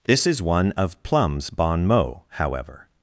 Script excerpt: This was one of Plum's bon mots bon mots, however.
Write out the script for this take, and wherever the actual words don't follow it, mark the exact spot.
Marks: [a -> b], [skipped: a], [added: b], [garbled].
This [was -> is] one of Plum's bon mots [skipped: bon mots,] however.